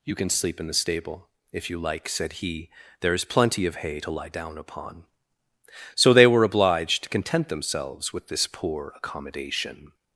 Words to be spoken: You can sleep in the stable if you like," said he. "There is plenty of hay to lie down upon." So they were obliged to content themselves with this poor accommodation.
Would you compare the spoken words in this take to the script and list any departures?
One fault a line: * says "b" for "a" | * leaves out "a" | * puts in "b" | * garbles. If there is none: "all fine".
all fine